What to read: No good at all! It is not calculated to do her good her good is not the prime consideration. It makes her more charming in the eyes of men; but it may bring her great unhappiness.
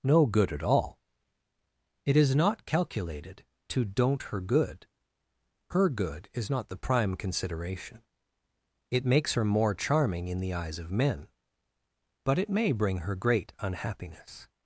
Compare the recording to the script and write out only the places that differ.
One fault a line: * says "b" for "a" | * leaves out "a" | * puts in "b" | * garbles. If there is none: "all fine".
* says "don't" for "do"